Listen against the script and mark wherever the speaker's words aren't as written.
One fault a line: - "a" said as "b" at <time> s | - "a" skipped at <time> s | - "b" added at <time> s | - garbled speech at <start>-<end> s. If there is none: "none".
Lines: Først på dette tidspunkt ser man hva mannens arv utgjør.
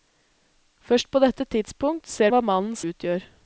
- "man" skipped at 2.3 s
- "arv" skipped at 2.8 s